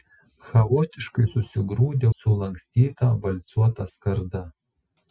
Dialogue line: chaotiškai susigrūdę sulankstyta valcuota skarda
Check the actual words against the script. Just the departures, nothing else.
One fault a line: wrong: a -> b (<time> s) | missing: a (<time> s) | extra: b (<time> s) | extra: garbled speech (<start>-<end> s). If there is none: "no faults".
no faults